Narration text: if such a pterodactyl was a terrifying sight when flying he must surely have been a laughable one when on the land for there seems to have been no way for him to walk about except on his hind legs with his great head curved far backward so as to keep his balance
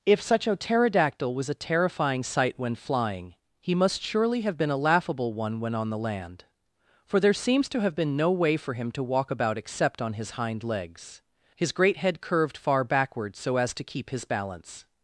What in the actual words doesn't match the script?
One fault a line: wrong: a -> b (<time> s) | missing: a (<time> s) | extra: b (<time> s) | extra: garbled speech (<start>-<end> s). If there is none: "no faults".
missing: with (11.2 s)